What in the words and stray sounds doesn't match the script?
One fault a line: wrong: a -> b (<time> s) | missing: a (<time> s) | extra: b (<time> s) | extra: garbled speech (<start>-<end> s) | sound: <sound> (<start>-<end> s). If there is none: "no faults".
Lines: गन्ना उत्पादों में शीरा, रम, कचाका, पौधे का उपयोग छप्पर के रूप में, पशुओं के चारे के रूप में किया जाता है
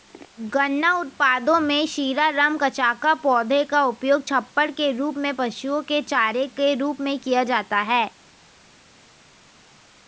no faults